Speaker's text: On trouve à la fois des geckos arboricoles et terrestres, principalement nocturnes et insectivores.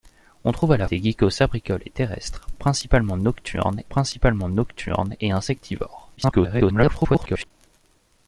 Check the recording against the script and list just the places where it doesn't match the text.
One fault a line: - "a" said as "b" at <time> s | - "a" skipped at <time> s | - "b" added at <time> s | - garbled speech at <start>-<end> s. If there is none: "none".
- "fois" skipped at 0.9 s
- "principalement nocturnes" added at 3.9 s
- garbled speech at 6.2-7.5 s